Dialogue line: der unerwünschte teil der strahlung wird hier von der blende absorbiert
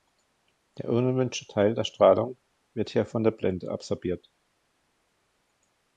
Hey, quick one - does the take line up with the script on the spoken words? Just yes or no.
yes